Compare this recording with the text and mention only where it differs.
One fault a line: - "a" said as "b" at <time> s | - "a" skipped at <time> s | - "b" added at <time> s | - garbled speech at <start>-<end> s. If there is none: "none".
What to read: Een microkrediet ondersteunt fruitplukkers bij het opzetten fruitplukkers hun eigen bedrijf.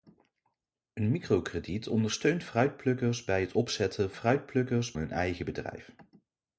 none